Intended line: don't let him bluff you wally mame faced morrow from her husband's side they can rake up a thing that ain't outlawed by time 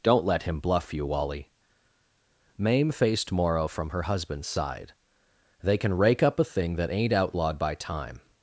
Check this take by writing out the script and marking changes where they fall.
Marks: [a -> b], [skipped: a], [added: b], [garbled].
don't let him bluff you wally mame faced morrow from her husband's side they can rake up a thing that ain't outlawed by time